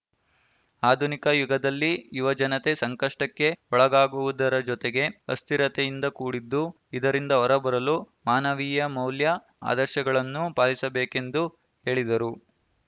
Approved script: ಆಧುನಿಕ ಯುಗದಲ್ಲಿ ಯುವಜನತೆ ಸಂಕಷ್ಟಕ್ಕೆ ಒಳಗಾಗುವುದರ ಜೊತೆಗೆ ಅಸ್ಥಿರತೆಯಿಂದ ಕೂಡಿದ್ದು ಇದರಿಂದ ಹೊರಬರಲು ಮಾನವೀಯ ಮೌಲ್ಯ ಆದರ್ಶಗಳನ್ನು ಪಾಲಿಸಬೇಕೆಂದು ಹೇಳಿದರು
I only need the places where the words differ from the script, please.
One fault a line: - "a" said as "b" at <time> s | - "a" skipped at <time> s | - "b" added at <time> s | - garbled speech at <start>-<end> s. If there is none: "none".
none